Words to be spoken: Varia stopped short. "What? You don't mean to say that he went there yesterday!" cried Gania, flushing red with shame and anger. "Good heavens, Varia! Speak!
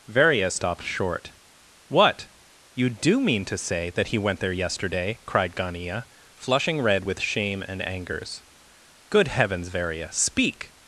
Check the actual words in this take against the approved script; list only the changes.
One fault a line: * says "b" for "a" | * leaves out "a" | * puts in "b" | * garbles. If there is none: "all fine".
* says "do" for "don't"
* says "angers" for "anger"